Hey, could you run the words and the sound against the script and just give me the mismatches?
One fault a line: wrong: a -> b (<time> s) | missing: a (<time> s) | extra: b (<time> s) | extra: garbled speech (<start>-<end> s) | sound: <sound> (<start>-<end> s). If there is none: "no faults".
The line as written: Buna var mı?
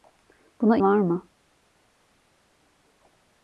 no faults